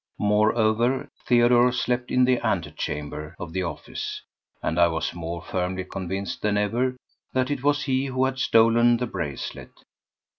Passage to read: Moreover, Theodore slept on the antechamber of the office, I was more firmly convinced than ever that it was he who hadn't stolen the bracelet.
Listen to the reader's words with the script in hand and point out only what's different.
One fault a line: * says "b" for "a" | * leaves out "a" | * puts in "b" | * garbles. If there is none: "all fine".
* says "in" for "on"
* puts in "and"
* says "had" for "hadn't"